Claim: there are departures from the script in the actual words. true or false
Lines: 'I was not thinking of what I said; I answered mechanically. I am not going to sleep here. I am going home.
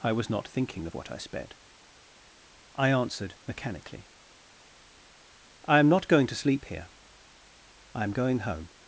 true